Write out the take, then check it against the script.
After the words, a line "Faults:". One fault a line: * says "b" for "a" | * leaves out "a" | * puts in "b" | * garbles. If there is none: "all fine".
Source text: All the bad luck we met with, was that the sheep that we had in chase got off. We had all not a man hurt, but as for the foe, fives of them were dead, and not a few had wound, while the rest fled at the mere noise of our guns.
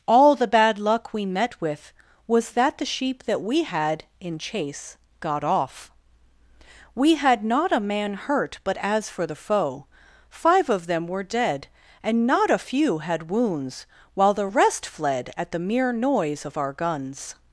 All the bad luck we met with, was that the sheep that we had in chase got off. We had not a man hurt, but as for the foe, five of them were dead, and not a few had wounds, while the rest fled at the mere noise of our guns.
Faults:
* leaves out "all"
* says "five" for "fives"
* says "wounds" for "wound"